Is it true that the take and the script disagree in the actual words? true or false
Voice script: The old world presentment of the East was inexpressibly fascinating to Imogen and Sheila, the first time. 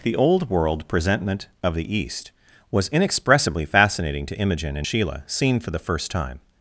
true